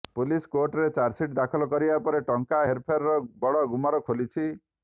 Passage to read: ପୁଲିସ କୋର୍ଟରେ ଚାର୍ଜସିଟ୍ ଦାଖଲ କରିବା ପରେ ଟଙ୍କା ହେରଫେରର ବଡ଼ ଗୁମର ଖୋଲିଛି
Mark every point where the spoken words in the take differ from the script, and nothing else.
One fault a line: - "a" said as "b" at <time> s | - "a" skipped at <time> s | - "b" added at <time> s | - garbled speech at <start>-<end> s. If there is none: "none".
none